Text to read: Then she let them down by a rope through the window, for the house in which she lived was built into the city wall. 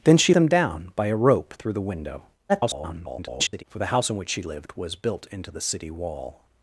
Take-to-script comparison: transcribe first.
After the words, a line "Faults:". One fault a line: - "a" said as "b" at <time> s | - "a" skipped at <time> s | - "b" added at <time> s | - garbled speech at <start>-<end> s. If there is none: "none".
Then she them down by a rope through the window, [garbled] for the house in which she lived was built into the city wall.
Faults:
- "let" skipped at 0.3 s
- garbled speech at 2.5-3.6 s